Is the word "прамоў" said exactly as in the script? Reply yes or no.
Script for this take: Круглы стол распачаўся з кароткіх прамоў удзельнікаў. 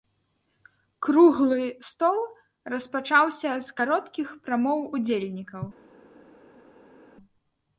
yes